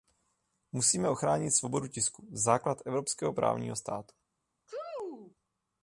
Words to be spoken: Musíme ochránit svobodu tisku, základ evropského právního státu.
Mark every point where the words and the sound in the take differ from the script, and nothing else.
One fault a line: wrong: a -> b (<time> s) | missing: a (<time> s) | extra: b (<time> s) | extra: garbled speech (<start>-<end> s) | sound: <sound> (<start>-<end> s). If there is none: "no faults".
sound: sneeze (4.7-5.4 s)